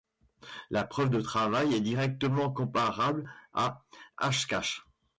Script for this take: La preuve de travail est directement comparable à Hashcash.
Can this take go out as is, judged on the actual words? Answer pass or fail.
pass